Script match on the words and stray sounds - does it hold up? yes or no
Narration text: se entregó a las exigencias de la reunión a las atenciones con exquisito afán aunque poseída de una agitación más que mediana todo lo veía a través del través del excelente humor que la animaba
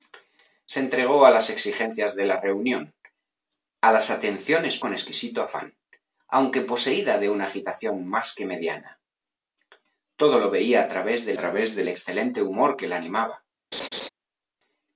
no